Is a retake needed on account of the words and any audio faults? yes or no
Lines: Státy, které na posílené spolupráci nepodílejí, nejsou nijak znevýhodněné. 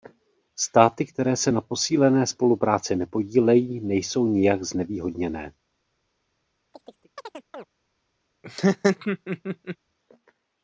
yes